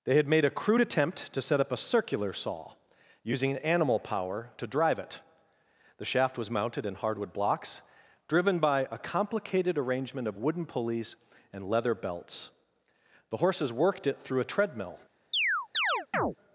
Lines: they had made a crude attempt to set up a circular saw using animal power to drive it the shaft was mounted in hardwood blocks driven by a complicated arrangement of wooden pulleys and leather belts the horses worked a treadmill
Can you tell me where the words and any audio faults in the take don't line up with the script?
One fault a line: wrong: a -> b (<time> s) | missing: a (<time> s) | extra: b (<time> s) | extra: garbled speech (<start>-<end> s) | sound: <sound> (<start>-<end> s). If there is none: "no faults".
extra: it through (14.1 s)
sound: chirp (15.3-16.4 s)